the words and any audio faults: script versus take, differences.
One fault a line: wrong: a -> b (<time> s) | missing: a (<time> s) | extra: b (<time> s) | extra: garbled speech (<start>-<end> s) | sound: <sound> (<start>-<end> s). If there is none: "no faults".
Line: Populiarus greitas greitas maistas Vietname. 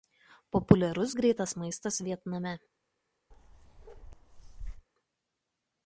missing: greitas (1.6 s)
sound: bark (3.3-4.9 s)